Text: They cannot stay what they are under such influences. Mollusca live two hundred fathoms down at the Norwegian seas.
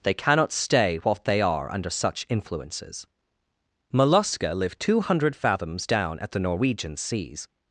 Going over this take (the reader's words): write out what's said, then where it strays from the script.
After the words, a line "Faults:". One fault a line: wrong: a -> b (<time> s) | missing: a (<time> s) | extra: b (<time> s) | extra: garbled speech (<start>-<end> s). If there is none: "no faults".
They cannot stay what they are under such influences. Mollusca live two hundred fathoms down at the Norwegian seas.
Faults:
no faults